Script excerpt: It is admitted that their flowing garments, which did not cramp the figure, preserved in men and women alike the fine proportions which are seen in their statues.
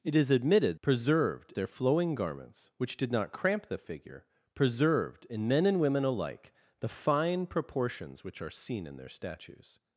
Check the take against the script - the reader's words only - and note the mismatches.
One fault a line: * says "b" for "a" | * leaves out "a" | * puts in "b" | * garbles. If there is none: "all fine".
* says "preserved" for "that"